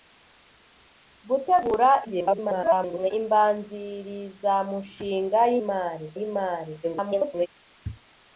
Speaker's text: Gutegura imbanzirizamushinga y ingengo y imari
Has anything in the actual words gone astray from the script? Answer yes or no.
yes